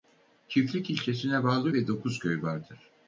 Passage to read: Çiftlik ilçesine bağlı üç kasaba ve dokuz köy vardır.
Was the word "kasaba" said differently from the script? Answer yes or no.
yes